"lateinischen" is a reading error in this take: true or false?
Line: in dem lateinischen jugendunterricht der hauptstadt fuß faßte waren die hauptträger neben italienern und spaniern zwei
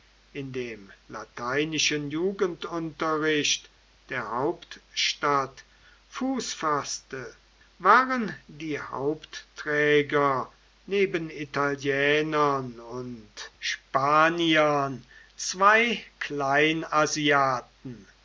false